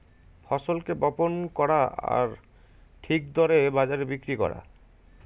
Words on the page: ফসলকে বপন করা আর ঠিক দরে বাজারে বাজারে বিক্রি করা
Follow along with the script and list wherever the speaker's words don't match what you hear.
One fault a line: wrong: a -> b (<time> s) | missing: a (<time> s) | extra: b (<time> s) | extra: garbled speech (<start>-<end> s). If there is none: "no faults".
missing: বাজারে (4.0 s)